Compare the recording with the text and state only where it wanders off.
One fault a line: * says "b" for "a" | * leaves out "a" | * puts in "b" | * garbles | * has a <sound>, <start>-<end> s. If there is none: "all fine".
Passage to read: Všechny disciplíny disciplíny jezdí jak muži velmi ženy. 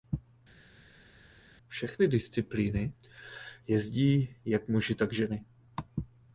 * leaves out "disciplíny"
* says "tak" for "velmi"